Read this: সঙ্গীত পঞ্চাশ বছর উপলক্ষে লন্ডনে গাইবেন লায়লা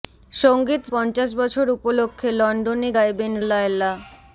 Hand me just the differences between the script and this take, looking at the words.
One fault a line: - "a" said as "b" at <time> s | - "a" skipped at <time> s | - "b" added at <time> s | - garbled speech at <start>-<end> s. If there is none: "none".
none